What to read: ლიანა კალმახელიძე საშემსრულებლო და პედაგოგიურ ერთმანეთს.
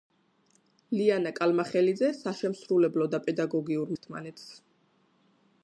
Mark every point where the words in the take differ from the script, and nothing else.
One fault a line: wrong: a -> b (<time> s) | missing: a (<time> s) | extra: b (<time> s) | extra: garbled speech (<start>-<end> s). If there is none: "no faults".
no faults